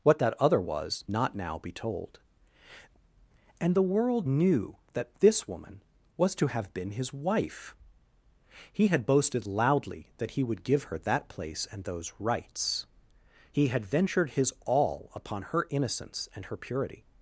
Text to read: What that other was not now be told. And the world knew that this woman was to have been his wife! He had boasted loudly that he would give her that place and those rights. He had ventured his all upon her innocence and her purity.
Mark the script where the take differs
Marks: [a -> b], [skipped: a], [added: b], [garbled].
What that other was not now be told. And the world knew that this woman was to have been his wife! He had boasted loudly that he would give her that place and those rights. He had ventured his all upon her innocence and her purity.